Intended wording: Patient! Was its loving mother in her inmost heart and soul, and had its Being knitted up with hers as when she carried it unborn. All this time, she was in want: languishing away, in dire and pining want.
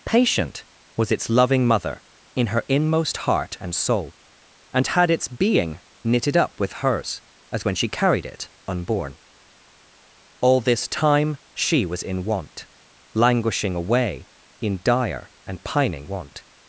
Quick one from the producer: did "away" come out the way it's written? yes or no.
yes